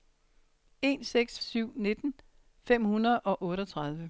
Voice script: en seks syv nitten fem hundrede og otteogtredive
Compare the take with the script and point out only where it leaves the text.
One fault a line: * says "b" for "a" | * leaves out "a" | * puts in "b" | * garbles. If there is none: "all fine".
all fine